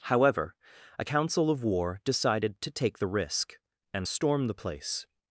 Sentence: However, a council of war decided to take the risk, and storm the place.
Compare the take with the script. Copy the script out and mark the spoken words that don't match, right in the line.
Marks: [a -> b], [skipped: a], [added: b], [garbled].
However, a council of war decided to take the risk, and storm the place.